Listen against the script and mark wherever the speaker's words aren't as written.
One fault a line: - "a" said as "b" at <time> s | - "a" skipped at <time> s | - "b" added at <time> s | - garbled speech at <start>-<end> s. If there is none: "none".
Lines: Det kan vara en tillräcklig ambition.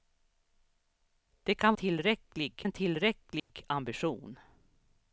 - "vara" said as "tillräcklig" at 1.7 s